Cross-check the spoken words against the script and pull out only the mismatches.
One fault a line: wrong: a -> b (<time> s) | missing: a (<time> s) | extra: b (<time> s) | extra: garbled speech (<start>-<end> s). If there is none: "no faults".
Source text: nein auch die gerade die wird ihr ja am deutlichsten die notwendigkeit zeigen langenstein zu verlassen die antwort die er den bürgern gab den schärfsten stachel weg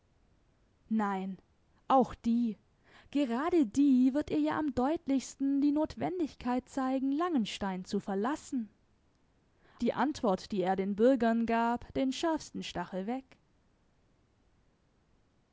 no faults